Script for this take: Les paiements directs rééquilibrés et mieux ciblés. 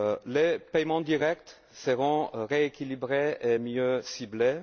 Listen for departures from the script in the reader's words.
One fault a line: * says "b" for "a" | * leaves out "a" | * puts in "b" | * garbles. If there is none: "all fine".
* puts in "seront"